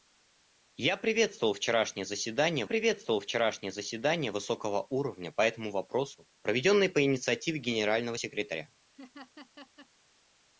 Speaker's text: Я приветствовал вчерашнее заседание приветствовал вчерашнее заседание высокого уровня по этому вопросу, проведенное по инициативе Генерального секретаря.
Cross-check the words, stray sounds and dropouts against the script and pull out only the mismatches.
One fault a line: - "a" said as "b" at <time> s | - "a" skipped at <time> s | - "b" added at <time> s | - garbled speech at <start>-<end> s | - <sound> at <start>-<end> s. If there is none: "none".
- laugh at 8.9-9.9 s